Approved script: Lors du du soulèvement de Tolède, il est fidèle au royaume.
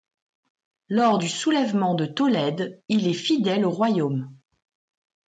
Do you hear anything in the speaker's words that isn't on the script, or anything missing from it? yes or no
yes